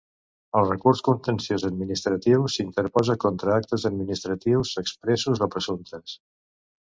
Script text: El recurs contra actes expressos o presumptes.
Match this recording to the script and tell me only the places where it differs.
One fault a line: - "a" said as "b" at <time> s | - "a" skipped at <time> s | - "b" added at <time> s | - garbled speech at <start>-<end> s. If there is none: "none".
- "contenciós administratiu s'interposa" added at 1.1 s
- "administratius" added at 3.9 s